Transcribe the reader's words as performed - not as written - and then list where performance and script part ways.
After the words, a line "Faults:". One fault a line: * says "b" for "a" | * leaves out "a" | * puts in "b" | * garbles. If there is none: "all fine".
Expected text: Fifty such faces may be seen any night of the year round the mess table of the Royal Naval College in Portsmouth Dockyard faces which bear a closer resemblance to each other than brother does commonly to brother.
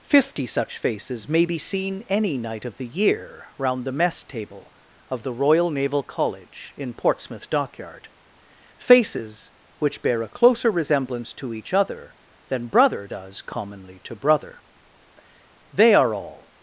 Fifty such faces may be seen any night of the year round the mess table of the Royal Naval College in Portsmouth Dockyard faces which bear a closer resemblance to each other than brother does commonly to brother. They are all
Faults:
* puts in "They are all"